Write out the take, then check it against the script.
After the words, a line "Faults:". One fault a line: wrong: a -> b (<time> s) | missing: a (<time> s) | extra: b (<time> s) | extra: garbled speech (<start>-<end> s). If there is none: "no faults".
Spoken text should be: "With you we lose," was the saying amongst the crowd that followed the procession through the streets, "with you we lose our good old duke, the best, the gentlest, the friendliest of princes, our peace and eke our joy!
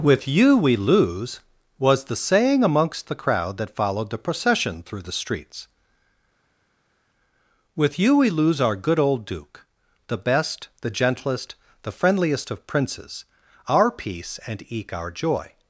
"With you we lose," was the saying amongst the crowd that followed the procession through the streets, "with you we lose our good old duke, the best, the gentlest, the friendliest of princes, our peace and eke our joy!
Faults:
no faults